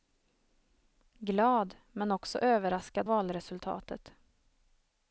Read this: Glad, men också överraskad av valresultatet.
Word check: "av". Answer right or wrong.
wrong